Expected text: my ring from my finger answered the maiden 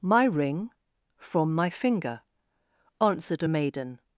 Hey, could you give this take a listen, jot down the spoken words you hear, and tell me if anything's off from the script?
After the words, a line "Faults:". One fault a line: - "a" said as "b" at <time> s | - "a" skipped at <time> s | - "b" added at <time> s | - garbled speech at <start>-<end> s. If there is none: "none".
my ring from my finger answered a maiden
Faults:
- "the" said as "a" at 3.4 s